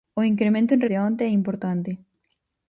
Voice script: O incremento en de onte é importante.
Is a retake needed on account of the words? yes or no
no